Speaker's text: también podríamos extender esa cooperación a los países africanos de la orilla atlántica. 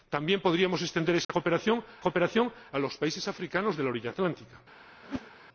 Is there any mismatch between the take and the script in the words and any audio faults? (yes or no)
yes